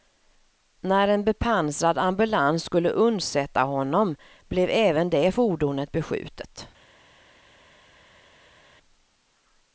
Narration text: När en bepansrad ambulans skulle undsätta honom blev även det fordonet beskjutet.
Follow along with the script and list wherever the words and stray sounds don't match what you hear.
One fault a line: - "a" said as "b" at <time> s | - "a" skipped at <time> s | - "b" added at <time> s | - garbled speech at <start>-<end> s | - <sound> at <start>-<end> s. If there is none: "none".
none